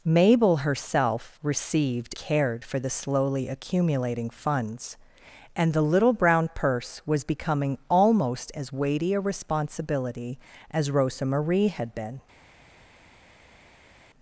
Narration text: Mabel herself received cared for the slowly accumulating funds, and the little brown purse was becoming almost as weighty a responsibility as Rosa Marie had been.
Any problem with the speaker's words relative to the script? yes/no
no